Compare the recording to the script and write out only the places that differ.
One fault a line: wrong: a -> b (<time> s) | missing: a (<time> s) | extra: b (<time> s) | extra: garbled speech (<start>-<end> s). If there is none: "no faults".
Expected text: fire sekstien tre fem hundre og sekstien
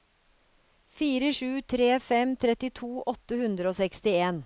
wrong: sekstien -> sju (1.3 s)
extra: trettito åtte (2.4 s)